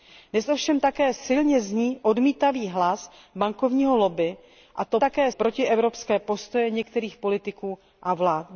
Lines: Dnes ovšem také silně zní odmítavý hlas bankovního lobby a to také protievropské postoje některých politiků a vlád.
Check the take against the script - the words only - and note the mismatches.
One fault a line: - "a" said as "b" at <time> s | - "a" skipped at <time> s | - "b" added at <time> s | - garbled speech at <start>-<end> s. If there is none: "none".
none